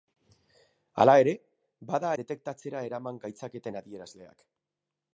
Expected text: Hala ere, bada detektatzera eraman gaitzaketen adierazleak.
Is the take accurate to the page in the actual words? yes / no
yes